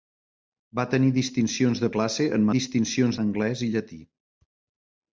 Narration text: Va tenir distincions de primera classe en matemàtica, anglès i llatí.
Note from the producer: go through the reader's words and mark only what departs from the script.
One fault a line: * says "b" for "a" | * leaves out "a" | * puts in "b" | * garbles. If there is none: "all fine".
* leaves out "primera"
* says "distincions" for "matemàtica"